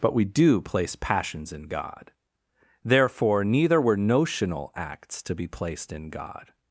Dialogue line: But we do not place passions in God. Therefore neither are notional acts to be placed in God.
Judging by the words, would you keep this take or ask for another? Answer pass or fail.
fail